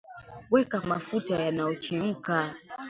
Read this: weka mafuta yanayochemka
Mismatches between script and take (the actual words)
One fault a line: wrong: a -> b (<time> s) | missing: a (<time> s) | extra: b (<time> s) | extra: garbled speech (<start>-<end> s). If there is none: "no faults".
no faults